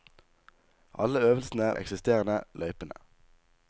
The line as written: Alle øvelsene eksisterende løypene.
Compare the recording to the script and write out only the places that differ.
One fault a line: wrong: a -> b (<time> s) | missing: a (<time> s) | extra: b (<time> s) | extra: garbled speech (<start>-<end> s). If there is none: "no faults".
no faults